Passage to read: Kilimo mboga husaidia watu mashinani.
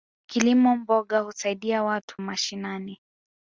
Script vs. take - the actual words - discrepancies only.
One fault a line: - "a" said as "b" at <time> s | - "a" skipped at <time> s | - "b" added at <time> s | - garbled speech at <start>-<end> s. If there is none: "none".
none